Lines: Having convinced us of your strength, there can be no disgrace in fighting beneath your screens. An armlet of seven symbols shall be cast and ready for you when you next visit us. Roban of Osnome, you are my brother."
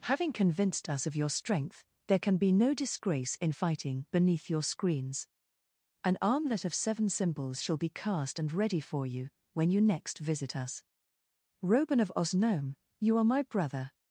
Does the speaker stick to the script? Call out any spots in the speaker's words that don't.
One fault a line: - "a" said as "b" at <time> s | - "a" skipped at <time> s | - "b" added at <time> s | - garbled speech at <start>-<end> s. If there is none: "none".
none